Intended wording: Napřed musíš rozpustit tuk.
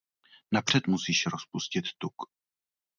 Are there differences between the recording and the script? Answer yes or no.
no